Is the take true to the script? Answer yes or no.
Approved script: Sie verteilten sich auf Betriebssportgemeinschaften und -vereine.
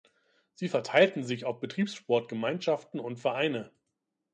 yes